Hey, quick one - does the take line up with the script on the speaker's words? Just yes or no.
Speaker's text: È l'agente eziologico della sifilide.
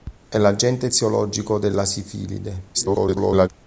no